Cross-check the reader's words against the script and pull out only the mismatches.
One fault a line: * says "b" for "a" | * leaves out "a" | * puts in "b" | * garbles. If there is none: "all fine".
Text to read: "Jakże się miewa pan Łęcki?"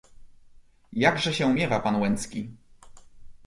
all fine